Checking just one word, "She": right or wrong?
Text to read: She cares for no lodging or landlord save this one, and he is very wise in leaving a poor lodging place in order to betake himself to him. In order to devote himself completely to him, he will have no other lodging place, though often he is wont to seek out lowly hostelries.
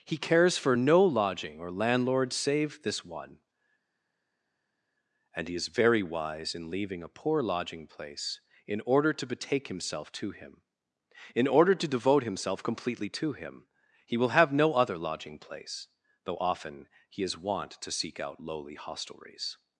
wrong